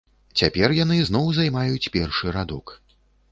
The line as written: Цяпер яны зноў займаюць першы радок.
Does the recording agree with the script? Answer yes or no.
yes